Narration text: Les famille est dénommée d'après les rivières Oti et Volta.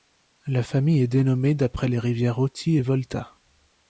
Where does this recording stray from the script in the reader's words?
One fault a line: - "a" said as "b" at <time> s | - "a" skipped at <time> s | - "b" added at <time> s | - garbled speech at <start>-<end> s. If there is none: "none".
- "Les" said as "La" at 0.5 s